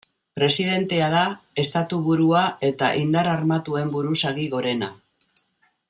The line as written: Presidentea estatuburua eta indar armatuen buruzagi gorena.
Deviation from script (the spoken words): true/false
true